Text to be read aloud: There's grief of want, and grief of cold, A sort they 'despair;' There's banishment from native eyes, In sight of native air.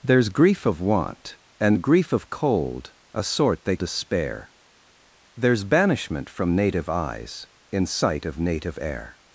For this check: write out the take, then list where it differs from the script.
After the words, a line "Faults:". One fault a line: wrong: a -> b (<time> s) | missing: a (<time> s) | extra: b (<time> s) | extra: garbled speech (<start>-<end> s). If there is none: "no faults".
There's grief of want, and grief of cold, A sort they 'despair;' There's banishment from native eyes, In sight of native air.
Faults:
no faults